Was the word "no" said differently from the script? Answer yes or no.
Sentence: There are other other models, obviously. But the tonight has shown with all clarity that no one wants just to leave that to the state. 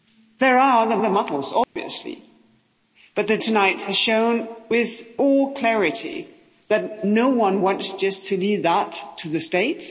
no